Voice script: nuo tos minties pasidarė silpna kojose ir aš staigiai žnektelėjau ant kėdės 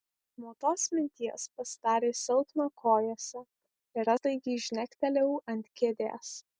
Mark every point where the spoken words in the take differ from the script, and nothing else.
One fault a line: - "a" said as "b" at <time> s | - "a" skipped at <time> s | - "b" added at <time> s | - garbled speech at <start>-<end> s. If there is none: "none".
- "aš" skipped at 4.1 s